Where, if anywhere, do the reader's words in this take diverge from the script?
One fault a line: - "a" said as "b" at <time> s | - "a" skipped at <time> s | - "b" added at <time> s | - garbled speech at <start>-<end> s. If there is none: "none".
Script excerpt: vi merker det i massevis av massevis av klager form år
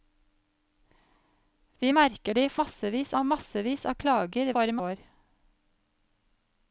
none